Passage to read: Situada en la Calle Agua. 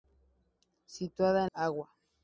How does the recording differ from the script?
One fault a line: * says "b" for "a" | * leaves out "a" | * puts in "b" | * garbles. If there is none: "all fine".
* leaves out "la Calle"